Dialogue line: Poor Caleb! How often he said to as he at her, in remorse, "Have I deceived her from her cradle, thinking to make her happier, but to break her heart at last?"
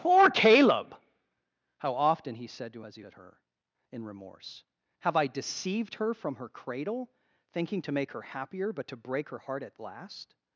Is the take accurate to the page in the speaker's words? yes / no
yes